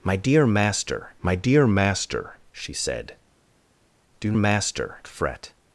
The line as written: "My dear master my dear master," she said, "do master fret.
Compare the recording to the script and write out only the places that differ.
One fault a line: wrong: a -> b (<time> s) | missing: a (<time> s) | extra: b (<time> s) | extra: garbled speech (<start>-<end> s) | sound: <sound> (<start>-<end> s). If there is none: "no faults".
no faults